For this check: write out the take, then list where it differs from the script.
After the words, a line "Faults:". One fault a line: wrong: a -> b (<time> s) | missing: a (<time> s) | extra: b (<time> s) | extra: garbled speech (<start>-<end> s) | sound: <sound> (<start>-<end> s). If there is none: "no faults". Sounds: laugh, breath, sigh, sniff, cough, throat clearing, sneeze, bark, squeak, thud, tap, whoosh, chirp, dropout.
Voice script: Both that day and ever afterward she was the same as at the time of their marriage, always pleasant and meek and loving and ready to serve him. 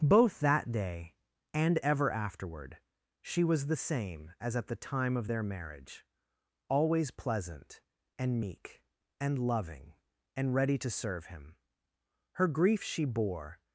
Both that day and ever afterward she was the same as at the time of their marriage, always pleasant and meek and loving and ready to serve him. Her grief she bore
Faults:
extra: Her grief she bore (12.3 s)